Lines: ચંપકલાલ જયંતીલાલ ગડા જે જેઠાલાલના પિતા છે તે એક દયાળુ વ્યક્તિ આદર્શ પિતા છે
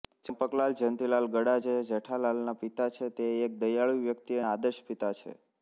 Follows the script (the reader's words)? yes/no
yes